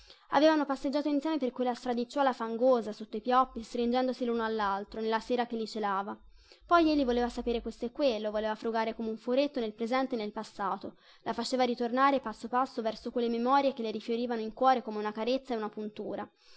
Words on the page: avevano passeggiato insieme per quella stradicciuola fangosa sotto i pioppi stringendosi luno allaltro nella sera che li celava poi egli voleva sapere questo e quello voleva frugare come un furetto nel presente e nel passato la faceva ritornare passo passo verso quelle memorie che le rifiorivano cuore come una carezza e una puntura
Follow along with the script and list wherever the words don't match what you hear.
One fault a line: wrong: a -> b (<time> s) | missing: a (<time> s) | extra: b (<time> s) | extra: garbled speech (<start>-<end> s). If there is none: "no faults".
extra: in (14.4 s)